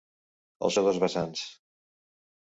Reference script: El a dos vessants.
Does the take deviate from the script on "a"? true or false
false